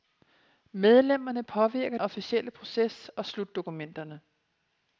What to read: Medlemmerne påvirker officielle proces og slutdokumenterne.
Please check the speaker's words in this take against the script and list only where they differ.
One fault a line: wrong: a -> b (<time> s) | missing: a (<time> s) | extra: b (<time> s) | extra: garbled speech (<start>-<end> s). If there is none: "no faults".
no faults